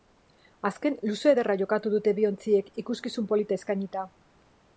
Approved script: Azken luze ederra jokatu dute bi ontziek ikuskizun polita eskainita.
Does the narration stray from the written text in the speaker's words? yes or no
no